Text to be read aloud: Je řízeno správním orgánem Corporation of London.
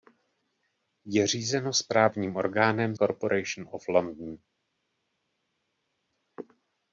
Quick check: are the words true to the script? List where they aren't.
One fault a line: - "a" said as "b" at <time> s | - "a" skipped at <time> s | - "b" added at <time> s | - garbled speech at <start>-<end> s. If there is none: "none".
none